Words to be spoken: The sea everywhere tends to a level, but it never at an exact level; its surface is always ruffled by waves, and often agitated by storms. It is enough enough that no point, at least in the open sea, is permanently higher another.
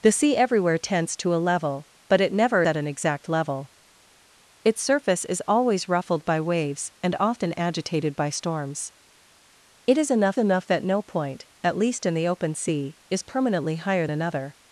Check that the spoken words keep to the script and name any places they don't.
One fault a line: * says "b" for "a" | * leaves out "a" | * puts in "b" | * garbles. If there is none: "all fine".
all fine